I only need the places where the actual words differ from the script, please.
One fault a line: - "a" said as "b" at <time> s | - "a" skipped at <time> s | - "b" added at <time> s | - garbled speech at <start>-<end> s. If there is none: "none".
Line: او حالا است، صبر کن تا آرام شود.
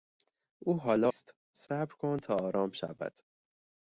none